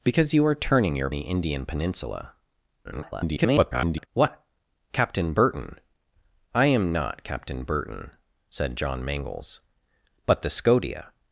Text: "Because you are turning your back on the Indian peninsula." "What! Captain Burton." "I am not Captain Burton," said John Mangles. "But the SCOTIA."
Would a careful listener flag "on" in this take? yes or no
yes